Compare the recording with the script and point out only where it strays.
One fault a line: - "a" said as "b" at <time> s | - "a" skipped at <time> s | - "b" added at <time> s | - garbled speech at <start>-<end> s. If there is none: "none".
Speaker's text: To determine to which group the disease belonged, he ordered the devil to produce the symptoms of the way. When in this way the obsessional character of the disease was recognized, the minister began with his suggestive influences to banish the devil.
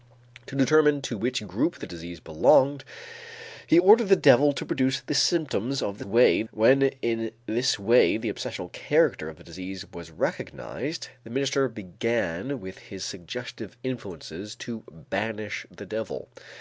none